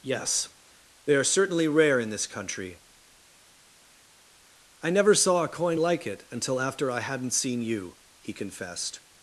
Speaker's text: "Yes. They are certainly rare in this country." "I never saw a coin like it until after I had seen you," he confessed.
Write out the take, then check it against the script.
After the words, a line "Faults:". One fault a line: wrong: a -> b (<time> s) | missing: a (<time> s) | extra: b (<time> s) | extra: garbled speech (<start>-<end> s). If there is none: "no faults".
"Yes. They are certainly rare in this country." "I never saw a coin like it until after I hadn't seen you," he confessed.
Faults:
wrong: had -> hadn't (7.0 s)